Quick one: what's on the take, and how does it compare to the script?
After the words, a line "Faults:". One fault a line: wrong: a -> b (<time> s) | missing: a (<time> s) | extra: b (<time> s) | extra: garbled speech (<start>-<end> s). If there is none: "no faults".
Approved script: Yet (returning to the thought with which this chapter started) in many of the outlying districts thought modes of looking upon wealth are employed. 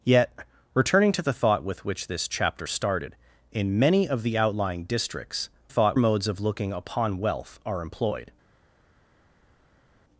Yet (returning to the thought with which this chapter started) in many of the outlying districts thought modes of looking upon wealth are employed.
Faults:
no faults